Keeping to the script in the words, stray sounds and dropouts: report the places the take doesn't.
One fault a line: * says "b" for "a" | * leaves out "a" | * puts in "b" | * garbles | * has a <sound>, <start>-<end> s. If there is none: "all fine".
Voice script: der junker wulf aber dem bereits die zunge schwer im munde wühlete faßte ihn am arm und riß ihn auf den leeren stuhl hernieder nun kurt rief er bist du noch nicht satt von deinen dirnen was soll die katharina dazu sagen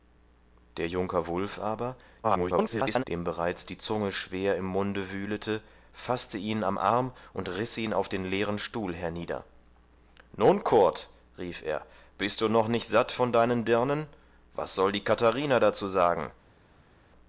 * garbles